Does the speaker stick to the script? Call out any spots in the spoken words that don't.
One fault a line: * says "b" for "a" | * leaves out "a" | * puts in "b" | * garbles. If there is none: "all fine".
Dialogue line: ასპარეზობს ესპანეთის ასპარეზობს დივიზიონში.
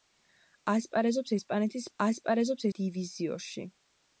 all fine